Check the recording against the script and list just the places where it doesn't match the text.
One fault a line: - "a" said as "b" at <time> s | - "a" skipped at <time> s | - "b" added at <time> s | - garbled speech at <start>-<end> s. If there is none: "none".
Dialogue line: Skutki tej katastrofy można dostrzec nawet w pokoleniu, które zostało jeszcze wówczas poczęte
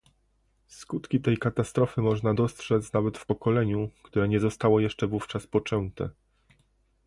- "nie" added at 4.3 s